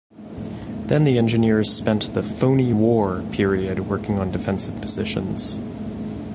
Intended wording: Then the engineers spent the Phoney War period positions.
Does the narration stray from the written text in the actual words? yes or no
yes